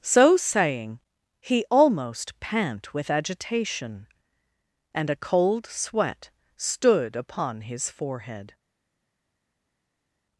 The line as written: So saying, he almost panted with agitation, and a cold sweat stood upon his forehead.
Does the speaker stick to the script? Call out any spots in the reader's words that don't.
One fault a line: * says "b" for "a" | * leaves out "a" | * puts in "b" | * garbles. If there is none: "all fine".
* says "pant" for "panted"